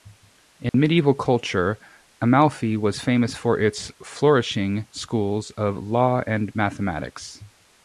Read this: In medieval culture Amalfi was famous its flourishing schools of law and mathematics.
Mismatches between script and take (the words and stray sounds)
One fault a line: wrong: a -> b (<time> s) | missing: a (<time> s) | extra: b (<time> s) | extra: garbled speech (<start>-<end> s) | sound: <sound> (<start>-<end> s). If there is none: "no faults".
sound: dropout (0.7-0.7 s)
extra: for (3.4 s)